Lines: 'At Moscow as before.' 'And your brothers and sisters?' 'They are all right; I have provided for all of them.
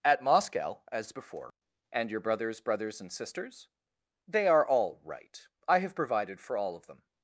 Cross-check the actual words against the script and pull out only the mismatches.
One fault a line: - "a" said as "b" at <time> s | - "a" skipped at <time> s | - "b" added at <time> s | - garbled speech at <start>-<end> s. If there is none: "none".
- "brothers" added at 2.6 s